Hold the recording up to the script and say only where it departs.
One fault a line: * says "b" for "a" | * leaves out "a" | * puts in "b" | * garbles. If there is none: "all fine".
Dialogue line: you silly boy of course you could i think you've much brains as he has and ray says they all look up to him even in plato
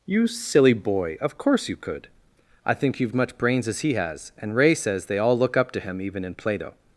all fine